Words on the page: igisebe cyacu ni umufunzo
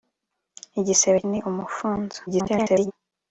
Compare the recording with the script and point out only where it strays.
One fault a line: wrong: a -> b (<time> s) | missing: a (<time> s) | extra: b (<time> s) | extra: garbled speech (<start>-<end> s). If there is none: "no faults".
missing: cyacu (1.2 s)
extra: garbled speech (2.3-2.9 s)